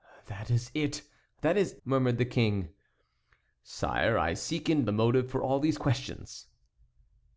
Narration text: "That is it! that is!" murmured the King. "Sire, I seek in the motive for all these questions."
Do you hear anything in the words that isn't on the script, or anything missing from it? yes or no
no